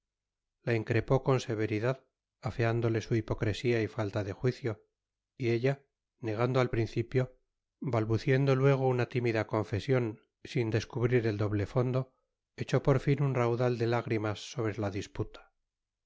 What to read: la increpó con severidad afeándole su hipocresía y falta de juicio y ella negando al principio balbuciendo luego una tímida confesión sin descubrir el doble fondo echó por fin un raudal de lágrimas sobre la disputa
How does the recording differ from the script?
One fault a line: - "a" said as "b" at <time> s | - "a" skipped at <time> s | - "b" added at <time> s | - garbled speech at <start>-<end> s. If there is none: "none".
none